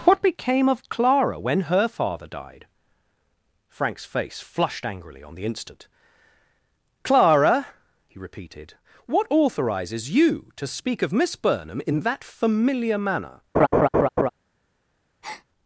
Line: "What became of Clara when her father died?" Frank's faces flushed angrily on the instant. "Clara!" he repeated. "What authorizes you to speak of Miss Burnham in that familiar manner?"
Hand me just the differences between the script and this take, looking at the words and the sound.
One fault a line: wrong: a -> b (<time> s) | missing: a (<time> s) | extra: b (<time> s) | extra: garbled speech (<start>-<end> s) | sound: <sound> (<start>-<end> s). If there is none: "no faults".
wrong: faces -> face (4.1 s)
sound: laugh (13.5-14.3 s)
sound: breath (15.2-15.4 s)